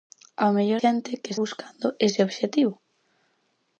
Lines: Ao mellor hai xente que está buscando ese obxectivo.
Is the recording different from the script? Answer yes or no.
yes